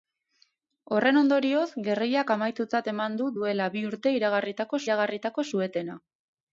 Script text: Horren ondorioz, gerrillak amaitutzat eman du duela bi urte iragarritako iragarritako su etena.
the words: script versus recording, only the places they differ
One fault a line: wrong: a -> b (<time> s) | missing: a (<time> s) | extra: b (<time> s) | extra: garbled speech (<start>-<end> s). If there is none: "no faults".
no faults